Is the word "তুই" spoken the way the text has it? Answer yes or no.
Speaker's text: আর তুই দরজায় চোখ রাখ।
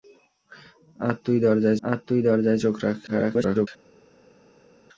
yes